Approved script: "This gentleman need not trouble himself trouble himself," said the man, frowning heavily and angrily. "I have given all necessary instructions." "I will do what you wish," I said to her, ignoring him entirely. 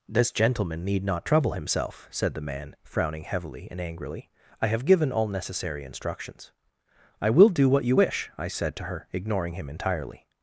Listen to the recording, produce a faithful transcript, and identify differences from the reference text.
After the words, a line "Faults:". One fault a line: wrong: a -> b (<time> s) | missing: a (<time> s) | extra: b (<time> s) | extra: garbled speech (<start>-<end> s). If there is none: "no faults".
"This gentleman need not trouble himself," said the man, frowning heavily and angrily. "I have given all necessary instructions." "I will do what you wish," I said to her, ignoring him entirely.
Faults:
missing: trouble himself (2.1 s)